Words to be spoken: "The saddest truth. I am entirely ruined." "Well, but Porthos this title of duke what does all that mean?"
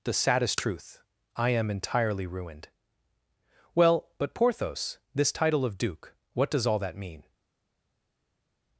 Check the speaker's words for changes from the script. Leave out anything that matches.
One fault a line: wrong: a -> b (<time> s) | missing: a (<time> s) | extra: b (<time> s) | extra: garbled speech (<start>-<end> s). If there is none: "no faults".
no faults